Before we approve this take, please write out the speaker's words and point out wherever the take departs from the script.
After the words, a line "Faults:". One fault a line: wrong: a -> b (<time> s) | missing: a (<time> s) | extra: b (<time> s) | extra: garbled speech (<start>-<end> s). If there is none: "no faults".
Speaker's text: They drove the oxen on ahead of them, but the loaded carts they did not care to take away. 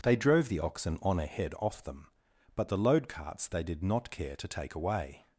They drove the oxen on ahead off them, but the load carts they did not care to take away.
Faults:
wrong: of -> off (1.6 s)
wrong: loaded -> load (2.8 s)